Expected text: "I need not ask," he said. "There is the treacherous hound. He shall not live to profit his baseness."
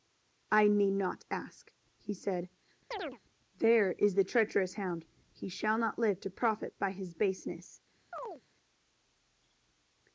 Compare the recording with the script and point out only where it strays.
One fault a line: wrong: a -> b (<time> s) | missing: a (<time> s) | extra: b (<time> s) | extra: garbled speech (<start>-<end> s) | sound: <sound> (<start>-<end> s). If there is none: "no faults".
sound: chirp (2.9-3.2 s)
extra: by (6.8 s)
sound: chirp (8.1-8.4 s)